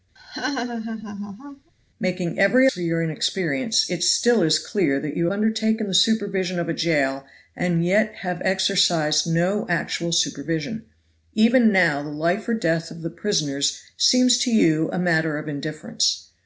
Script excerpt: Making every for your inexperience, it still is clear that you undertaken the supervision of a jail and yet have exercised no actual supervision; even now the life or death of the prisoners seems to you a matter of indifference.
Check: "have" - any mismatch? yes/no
no